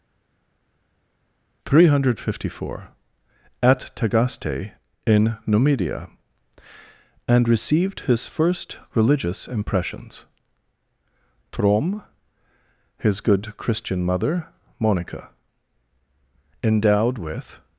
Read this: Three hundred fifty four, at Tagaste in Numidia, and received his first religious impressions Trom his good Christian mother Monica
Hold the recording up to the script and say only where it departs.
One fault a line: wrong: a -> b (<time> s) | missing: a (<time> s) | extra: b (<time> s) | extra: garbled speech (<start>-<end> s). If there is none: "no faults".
extra: Endowed with (16.6 s)